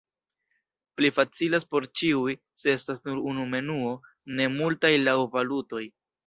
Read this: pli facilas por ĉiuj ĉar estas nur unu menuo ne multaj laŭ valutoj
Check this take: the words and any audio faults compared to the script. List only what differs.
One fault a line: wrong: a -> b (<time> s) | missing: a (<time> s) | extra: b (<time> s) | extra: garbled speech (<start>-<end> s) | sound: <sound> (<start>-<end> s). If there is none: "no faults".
wrong: ĉar -> se (2.6 s)